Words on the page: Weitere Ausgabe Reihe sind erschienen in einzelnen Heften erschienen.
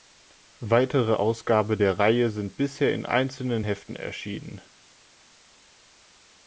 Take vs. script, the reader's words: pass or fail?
fail